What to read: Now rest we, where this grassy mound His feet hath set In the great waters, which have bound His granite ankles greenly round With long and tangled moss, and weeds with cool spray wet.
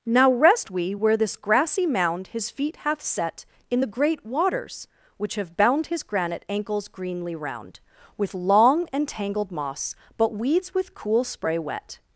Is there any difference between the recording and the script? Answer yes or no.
yes